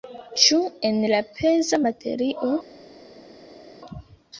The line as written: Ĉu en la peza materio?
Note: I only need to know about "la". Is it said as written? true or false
true